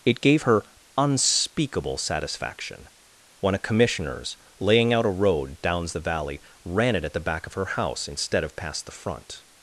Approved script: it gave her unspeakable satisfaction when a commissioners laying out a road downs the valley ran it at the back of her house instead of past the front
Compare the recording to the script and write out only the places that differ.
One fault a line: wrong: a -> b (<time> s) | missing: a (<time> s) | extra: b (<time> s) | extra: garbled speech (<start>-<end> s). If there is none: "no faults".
no faults